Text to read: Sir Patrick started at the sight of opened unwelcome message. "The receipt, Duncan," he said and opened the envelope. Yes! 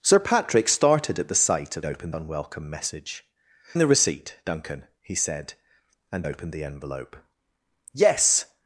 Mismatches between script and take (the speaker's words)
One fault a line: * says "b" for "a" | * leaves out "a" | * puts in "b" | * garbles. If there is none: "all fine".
all fine